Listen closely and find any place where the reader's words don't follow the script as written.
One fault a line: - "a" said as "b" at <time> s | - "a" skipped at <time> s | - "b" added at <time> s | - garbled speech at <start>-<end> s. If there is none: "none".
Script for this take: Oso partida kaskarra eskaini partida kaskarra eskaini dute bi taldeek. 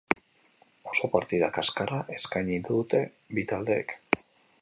- "partida kaskarra eskaini" skipped at 2.6 s